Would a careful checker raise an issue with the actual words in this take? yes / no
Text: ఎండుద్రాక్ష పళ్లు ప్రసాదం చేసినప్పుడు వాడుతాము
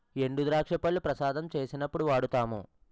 no